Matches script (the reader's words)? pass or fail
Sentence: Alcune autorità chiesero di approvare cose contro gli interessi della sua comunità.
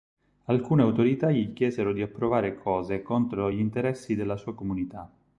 fail